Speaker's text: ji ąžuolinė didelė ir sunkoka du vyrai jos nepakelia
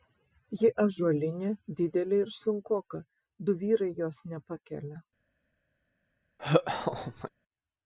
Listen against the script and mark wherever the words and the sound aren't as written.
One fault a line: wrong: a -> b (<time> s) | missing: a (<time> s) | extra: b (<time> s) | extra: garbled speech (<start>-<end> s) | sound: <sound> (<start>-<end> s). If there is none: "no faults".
sound: laugh (6.4-7.3 s)